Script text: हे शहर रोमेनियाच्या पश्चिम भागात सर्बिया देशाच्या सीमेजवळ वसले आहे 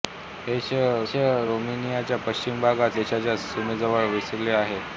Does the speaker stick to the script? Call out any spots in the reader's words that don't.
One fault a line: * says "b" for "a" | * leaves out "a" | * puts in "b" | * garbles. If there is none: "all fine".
* puts in "शहर"
* leaves out "सर्बिया"